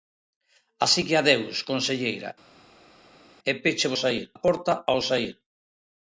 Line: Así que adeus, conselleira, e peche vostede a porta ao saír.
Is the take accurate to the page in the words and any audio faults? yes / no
no